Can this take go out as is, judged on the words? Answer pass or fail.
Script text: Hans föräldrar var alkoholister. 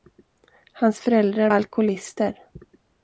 fail